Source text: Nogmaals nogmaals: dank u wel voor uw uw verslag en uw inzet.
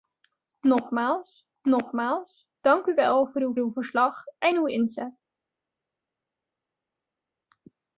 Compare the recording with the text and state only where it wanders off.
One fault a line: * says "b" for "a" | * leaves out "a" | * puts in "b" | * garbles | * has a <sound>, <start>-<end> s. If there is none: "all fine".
all fine